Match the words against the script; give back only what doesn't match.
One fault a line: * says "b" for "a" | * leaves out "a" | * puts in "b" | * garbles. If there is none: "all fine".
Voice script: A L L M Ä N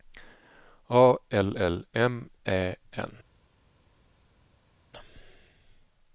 all fine